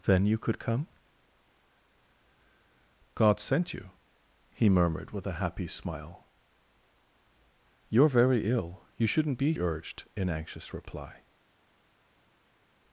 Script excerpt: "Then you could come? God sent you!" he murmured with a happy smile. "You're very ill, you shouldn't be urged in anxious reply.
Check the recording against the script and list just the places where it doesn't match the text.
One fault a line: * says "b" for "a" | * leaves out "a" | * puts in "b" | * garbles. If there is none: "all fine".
all fine